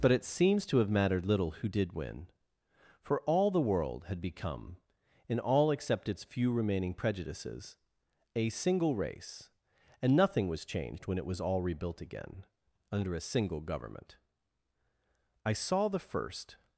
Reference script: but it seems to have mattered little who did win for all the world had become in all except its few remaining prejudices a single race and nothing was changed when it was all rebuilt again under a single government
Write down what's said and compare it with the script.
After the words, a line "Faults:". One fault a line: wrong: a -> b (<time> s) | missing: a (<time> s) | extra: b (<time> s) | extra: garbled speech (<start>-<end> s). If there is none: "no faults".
but it seems to have mattered little who did win for all the world had become in all except its few remaining prejudices a single race and nothing was changed when it was all rebuilt again under a single government i saw the first
Faults:
extra: i saw the first (15.4 s)